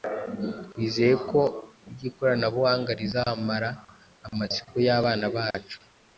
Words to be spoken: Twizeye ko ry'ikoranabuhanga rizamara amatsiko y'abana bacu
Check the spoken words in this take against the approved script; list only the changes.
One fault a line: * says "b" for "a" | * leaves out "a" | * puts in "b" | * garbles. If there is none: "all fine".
all fine